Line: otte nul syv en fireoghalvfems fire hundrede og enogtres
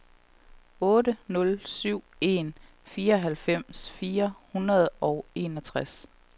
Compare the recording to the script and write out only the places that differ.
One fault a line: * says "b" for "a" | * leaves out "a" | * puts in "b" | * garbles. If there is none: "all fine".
all fine